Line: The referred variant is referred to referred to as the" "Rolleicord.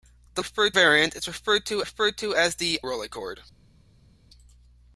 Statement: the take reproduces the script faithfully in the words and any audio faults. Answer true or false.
true